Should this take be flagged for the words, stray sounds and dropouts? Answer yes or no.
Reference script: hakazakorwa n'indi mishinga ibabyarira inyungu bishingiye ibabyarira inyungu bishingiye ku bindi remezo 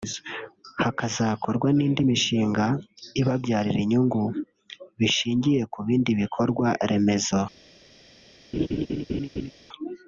yes